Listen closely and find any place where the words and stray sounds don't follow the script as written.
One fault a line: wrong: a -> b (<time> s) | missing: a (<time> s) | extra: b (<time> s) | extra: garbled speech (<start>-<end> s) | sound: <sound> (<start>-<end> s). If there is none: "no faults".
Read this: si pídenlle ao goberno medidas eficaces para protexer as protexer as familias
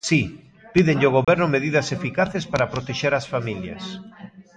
sound: dropout (1.2-1.3 s)
missing: protexer as (3.2 s)